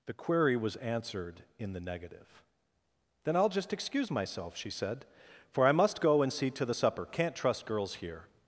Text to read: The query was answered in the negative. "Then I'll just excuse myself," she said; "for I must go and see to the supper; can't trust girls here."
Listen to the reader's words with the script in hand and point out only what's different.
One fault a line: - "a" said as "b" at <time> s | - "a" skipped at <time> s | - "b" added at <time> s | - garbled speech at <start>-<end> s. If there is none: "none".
none